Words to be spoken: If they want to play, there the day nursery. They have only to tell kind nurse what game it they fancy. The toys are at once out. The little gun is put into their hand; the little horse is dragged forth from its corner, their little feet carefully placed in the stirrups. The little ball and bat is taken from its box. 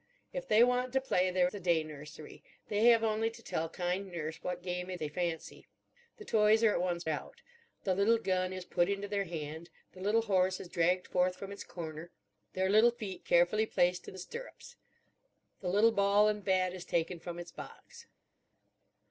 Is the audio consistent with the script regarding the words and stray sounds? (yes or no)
yes